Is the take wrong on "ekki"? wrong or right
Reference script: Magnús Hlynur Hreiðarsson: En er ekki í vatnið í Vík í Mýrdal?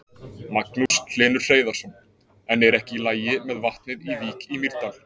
right